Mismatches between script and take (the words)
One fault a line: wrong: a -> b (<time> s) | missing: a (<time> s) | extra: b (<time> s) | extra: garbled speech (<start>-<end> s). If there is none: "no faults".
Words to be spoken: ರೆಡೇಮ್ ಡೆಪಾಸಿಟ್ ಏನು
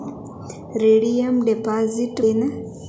no faults